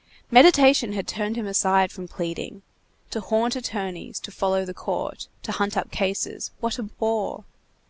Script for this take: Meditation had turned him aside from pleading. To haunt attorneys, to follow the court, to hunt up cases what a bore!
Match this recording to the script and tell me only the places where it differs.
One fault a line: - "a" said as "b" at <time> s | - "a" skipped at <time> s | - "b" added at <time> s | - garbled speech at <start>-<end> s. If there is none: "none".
none